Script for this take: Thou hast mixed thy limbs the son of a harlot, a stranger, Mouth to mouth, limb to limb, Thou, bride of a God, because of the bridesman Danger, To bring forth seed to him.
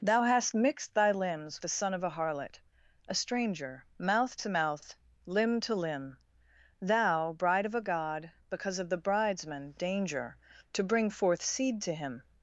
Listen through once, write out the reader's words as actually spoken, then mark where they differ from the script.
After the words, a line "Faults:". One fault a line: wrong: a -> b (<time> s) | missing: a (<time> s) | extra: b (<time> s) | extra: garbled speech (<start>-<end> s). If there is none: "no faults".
Thou hast mixed thy limbs the son of a harlot, a stranger, Mouth to mouth, limb to limb, Thou, bride of a God, because of the bridesman Danger, To bring forth seed to him.
Faults:
no faults